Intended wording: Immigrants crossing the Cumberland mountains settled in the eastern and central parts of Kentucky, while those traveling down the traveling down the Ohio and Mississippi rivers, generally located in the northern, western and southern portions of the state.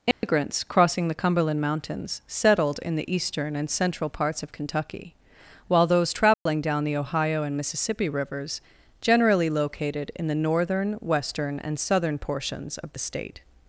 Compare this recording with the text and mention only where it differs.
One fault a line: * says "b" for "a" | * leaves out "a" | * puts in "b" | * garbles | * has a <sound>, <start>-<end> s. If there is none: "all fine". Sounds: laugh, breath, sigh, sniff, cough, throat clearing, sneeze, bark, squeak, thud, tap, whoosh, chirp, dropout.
* has a dropout, 0.1-0.2 s
* has a dropout, 6.3-6.5 s
* leaves out "traveling down the"